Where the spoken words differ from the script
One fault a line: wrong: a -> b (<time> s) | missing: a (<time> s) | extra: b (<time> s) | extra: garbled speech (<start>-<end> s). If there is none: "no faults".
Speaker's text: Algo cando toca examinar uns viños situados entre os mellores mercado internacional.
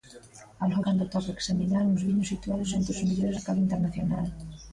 no faults